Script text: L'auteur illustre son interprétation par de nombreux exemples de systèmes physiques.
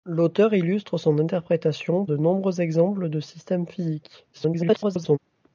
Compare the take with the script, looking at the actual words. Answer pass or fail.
fail